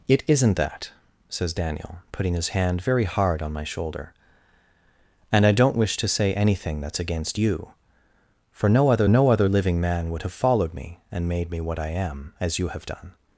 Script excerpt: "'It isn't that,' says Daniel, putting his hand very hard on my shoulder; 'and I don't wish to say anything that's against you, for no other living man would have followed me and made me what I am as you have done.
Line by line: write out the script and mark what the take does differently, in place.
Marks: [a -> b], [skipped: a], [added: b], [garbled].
"'It isn't that,' says Daniel, putting his hand very hard on my shoulder; 'and I don't wish to say anything that's against you, for no other [added: no other] living man would have followed me and made me what I am as you have done.